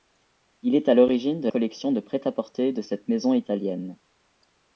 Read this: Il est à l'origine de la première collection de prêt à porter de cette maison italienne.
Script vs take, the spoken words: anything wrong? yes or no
yes